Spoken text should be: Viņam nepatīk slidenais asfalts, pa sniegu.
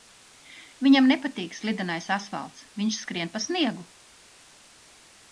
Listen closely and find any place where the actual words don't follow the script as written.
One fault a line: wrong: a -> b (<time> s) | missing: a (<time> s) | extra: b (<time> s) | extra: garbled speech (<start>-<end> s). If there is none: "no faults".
extra: viņš skrien (2.8 s)